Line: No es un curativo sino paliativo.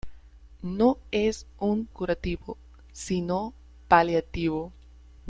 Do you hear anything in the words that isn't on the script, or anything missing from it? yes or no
no